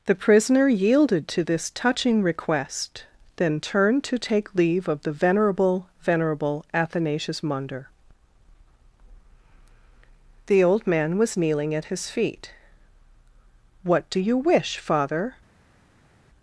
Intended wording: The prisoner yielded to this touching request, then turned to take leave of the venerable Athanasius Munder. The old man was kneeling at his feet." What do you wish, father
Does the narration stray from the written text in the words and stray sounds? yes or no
yes